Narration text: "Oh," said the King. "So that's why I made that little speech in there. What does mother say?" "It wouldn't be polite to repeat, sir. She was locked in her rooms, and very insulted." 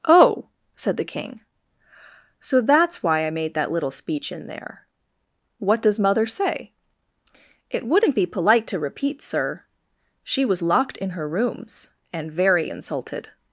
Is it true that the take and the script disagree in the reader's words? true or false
false